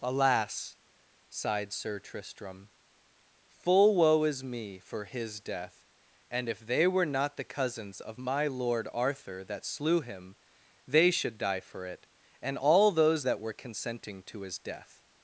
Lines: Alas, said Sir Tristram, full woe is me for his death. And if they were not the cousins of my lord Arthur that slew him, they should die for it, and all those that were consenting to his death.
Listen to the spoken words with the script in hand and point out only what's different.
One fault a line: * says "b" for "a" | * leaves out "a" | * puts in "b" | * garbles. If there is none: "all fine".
* says "sighed" for "said"